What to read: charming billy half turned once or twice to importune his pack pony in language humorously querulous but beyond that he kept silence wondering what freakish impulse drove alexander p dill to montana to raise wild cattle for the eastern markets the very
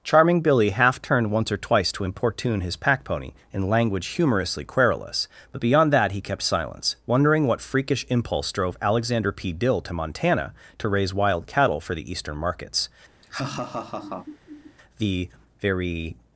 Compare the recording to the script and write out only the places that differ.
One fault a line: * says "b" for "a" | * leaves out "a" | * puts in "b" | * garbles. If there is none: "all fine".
all fine